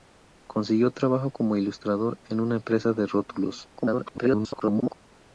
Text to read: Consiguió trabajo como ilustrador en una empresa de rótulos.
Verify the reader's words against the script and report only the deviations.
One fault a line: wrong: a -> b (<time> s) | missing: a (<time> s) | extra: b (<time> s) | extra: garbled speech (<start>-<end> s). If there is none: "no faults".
extra: garbled speech (3.8-5.0 s)